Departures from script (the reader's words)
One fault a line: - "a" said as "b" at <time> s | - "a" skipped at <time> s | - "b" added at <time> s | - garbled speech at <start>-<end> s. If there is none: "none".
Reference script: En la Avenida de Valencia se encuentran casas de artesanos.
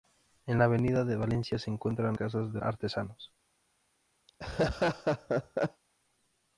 none